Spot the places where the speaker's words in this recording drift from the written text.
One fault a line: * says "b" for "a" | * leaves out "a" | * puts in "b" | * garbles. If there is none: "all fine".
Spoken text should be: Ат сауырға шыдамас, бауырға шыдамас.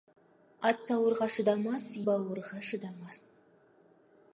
all fine